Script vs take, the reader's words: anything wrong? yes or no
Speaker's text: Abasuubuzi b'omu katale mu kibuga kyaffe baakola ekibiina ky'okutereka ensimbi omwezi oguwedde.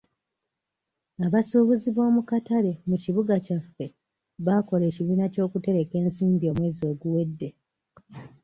no